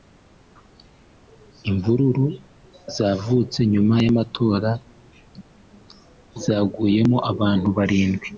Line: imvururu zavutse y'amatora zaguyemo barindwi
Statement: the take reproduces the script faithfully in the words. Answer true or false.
false